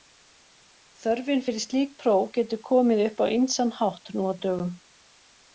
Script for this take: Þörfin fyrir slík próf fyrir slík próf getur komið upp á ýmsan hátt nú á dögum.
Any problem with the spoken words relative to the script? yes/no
yes